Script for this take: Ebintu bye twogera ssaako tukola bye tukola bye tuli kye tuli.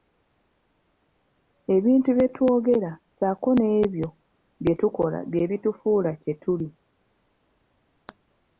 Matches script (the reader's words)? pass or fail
fail